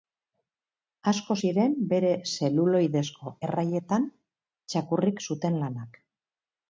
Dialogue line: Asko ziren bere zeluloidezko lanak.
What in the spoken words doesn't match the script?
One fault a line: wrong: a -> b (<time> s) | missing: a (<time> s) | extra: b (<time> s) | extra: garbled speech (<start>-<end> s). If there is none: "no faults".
extra: erraietan txakurrik zuten (3.5 s)